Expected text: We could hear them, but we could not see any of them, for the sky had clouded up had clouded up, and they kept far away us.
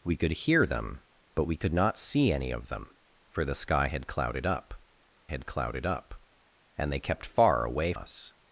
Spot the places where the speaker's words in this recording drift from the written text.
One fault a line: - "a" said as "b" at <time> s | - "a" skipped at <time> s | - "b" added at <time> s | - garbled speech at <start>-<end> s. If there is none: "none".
none